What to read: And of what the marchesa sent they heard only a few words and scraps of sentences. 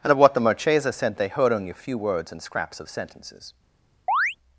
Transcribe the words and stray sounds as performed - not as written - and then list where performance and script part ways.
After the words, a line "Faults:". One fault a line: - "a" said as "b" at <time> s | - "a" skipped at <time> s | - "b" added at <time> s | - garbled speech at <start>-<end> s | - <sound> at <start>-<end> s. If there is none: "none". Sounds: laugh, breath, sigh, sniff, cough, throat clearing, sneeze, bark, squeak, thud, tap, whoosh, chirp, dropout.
And of what the marchesa sent they heard only a few words and scraps of sentences.
Faults:
- chirp at 4.1-4.4 s